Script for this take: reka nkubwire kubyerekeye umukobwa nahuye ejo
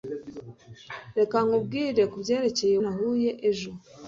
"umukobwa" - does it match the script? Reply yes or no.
no